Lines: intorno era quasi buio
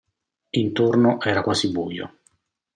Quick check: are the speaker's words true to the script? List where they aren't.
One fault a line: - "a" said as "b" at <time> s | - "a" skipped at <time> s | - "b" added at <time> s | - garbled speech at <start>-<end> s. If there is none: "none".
none